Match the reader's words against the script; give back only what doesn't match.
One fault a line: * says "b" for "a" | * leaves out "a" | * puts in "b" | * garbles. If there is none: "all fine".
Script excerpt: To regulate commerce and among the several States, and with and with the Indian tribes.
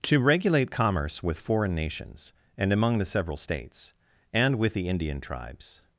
* puts in "with foreign nations"
* leaves out "and with"